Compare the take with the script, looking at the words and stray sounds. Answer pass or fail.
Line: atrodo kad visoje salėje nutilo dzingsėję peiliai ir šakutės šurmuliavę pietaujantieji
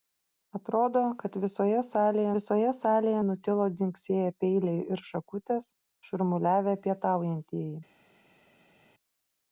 fail